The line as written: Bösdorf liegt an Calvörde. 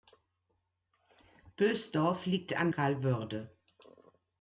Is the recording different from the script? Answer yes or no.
no